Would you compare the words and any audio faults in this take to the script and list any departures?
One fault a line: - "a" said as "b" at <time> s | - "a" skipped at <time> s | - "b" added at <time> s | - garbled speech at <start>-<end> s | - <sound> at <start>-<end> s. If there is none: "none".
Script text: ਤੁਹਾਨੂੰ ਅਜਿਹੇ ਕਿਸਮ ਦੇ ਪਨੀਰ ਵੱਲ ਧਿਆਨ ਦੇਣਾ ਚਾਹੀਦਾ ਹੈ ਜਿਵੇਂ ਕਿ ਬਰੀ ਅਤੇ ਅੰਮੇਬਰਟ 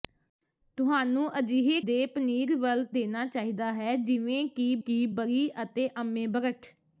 - "ਕਿਸਮ" skipped at 1.8 s
- "ਧਿਆਨ" skipped at 2.8 s
- "ਕਿ" added at 4.8 s